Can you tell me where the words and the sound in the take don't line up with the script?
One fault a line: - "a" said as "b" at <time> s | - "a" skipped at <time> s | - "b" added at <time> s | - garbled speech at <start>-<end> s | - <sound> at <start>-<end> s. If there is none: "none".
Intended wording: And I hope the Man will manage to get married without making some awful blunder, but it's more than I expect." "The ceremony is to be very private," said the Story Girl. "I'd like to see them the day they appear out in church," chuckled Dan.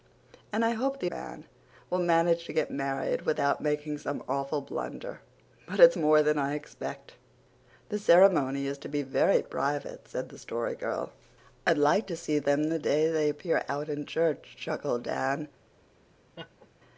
- laugh at 16.4-16.7 s